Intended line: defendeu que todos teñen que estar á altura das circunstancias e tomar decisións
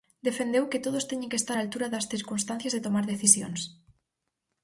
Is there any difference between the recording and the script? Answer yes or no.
no